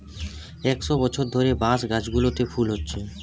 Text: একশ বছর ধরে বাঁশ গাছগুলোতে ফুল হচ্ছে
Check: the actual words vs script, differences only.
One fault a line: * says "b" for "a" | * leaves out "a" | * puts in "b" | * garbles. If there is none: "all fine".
all fine